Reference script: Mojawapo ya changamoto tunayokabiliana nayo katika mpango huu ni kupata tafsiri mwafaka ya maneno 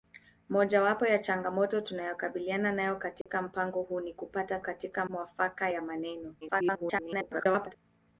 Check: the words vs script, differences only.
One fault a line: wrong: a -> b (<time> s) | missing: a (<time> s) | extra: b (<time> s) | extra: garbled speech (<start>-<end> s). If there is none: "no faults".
wrong: tafsiri -> katika (4.6 s)
extra: garbled speech (6.4-7.7 s)